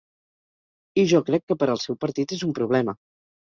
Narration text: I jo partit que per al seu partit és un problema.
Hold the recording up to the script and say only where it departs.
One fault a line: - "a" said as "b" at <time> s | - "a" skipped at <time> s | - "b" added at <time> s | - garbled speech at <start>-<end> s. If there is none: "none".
- "partit" said as "crec" at 1.3 s